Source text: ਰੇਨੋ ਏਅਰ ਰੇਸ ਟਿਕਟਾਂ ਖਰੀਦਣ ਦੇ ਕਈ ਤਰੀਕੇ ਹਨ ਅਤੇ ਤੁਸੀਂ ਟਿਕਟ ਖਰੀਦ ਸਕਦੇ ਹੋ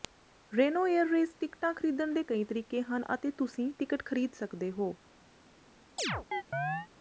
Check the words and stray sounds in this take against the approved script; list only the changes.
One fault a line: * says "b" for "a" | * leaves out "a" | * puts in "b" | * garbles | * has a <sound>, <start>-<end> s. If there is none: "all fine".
* has a chirp, 6.0-6.9 s